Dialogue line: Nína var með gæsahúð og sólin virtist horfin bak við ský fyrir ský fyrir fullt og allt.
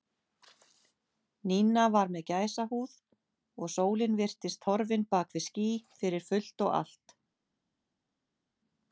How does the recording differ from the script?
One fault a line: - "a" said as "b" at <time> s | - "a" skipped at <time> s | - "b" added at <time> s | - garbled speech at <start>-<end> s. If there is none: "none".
- "ský fyrir" skipped at 6.3 s